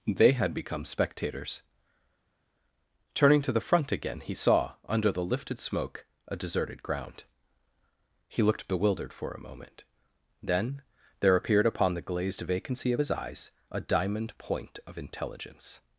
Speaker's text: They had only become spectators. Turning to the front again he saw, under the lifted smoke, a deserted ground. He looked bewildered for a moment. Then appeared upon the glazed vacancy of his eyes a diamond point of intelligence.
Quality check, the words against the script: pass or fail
fail